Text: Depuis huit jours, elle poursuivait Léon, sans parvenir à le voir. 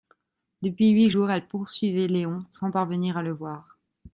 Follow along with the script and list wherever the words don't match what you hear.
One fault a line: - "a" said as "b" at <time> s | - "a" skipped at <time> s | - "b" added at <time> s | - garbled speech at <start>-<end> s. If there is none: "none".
none